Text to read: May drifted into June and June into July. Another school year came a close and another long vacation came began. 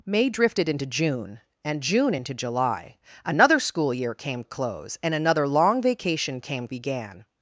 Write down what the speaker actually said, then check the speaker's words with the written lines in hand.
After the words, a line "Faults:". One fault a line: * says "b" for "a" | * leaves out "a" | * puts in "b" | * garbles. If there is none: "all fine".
May drifted into June and June into July. Another school year came a close and another long vacation came began.
Faults:
all fine